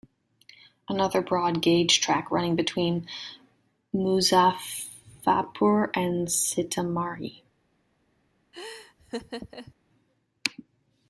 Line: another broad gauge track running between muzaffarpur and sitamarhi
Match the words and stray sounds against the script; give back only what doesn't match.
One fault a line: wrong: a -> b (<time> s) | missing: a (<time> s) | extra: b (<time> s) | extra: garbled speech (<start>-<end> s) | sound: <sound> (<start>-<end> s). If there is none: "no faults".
sound: laugh (8.5-9.7 s)